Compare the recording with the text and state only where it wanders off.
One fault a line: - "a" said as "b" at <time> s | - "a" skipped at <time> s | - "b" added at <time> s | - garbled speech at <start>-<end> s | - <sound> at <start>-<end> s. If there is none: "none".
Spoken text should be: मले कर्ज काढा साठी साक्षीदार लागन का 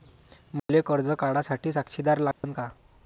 - dropout at 0.6-0.7 s
- dropout at 2.3-2.4 s